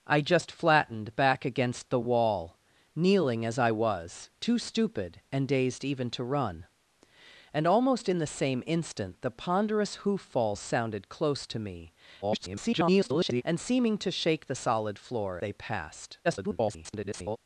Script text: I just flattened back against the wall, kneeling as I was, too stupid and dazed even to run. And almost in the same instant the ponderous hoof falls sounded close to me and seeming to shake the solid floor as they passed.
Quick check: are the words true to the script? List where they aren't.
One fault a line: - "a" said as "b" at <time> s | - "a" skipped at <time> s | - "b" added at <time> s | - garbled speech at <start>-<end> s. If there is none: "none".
- garbled speech at 12.2-13.4 s
- "as" skipped at 15.4 s
- garbled speech at 16.2-17.4 s